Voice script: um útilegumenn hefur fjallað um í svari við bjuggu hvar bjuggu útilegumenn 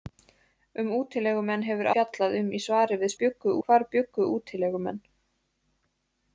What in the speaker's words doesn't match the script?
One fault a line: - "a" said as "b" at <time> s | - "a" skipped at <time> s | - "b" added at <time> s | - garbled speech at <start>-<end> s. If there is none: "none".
none